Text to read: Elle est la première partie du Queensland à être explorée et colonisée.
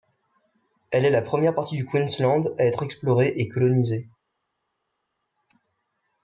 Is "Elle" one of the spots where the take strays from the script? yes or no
no